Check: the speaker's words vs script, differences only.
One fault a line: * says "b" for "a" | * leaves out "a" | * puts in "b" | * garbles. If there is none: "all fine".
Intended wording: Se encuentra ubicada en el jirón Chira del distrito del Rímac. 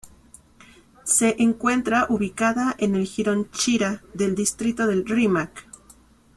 all fine